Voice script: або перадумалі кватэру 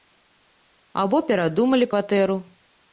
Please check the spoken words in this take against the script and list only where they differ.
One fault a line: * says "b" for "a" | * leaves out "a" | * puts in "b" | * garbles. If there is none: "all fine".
all fine